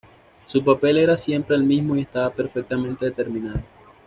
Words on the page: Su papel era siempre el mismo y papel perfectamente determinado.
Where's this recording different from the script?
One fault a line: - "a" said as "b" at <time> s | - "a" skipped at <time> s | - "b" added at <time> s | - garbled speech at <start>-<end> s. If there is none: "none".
- "papel" said as "estaba" at 2.0 s